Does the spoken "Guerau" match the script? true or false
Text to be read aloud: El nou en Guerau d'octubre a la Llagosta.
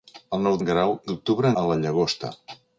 true